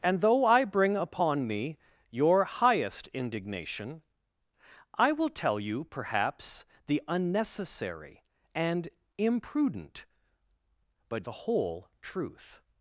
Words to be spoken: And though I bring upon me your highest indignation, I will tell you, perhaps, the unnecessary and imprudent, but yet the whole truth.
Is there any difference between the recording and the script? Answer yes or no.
yes